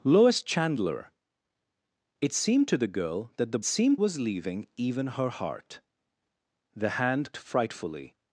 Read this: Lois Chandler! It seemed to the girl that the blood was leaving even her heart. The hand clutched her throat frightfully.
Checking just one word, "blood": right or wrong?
wrong